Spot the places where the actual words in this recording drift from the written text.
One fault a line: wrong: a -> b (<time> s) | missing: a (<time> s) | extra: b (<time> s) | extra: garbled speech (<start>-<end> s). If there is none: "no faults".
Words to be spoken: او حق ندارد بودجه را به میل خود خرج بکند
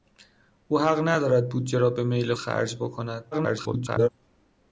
missing: خود (2.3 s)
extra: garbled speech (3.3-4.1 s)